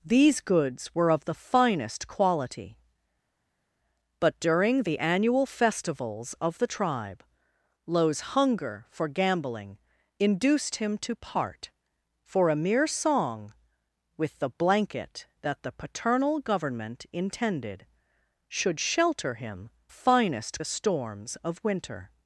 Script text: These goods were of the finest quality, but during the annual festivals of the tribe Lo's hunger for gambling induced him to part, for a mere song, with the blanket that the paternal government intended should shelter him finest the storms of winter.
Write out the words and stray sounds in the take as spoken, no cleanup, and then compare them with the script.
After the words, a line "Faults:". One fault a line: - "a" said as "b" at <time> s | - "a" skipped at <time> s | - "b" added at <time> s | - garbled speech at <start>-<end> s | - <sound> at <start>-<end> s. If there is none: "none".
These goods were of the finest quality, but during the annual festivals of the tribe Lo's hunger for gambling induced him to part, for a mere song, with the blanket that the paternal government intended should shelter him finest the storms of winter.
Faults:
none